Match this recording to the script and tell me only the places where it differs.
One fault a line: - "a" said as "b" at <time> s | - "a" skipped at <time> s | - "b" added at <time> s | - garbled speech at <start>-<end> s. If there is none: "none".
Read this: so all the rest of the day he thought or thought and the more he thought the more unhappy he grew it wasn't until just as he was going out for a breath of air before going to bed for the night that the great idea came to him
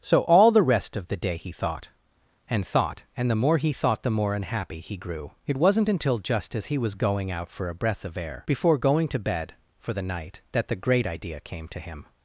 - "or" said as "and" at 2.5 s